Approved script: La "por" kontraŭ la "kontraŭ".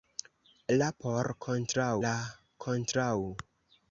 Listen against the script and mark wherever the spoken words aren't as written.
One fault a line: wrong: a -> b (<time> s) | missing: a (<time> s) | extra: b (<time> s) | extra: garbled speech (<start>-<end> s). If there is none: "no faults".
no faults